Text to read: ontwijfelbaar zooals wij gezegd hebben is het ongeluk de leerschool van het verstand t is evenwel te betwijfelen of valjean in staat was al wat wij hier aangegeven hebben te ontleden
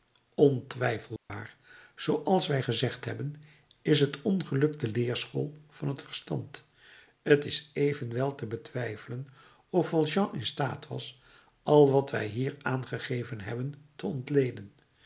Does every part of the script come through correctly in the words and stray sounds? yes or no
no